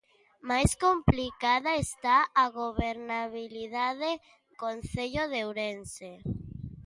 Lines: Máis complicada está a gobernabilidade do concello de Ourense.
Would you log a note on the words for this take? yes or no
yes